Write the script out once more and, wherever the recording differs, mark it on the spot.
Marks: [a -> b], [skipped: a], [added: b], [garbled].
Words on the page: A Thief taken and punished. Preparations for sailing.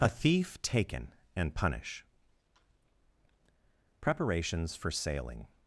A Thief taken and [punished. -> punish] Preparations for sailing.